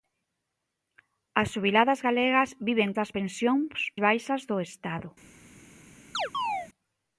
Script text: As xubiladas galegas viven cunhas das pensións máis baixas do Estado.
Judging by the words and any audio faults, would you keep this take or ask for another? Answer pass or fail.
fail